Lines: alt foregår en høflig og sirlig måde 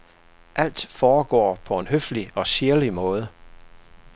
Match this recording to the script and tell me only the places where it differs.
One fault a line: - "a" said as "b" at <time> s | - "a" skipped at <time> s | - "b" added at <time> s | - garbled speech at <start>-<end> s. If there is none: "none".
- "på" added at 1.6 s